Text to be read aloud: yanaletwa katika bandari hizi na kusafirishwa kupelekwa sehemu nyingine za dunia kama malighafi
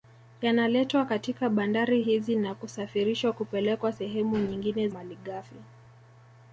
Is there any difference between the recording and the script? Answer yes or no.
yes